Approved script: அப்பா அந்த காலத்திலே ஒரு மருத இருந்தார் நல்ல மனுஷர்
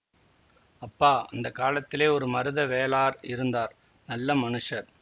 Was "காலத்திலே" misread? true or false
false